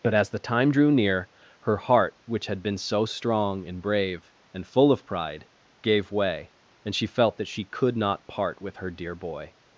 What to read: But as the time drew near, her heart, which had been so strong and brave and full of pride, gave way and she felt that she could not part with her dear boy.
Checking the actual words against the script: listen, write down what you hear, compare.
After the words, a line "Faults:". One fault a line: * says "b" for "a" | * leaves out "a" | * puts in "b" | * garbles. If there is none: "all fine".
But as the time drew near, her heart, which had been so strong and brave and full of pride, gave way and she felt that she could not part with her dear boy.
Faults:
all fine